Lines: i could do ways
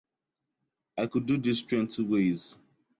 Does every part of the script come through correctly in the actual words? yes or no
no